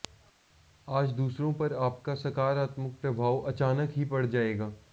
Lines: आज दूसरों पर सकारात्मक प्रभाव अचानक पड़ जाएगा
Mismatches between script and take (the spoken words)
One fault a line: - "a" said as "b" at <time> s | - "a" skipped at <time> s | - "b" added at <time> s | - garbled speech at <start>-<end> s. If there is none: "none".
- "आपका" added at 1.8 s
- "ही" added at 3.9 s